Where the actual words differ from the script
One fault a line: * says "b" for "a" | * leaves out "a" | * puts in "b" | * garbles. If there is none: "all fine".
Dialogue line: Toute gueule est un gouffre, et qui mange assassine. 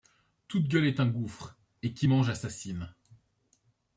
all fine